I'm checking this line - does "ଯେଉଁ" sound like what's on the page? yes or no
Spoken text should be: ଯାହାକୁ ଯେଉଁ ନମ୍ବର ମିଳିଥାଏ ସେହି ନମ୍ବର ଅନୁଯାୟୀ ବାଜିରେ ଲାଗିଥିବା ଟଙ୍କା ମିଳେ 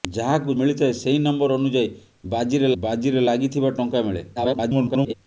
no